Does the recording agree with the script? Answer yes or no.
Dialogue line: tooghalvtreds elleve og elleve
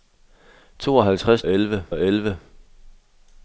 yes